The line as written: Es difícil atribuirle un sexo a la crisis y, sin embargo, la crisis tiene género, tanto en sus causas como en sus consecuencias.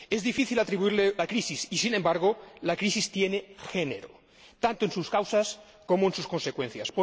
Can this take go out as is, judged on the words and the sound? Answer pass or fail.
fail